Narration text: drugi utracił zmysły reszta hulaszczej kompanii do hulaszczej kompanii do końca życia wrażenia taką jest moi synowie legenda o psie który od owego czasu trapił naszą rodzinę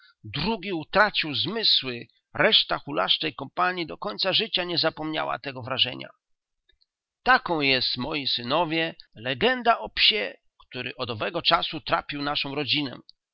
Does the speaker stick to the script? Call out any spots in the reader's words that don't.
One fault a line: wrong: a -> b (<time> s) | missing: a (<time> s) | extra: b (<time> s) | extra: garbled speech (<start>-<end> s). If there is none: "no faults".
wrong: hulaszczej kompanii do końca życia -> końca życia nie zapomniała tego (4.0 s)